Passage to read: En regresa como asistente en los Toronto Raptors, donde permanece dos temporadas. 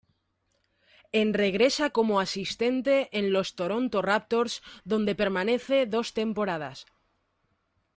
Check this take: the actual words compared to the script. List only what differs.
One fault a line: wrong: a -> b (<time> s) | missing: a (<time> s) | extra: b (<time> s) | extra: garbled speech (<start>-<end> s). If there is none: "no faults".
no faults